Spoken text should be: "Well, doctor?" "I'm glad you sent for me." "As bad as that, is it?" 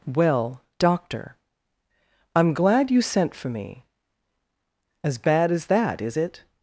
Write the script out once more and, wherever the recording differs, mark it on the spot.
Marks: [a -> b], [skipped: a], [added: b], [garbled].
"Well, doctor?" "I'm glad you sent for me." "As bad as that, is it?"